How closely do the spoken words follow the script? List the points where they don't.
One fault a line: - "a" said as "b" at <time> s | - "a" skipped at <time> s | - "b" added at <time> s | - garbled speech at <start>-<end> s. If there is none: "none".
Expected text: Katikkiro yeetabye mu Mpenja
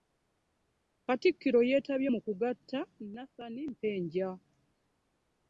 - "kugatta Nathan" added at 2.2 s